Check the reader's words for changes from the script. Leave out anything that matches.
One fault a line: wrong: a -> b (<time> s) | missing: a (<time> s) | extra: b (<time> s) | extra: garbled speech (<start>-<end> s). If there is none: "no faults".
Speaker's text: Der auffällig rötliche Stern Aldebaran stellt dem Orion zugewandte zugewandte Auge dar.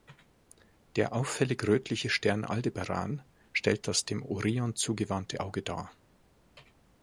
extra: das (3.9 s)
missing: zugewandte (5.4 s)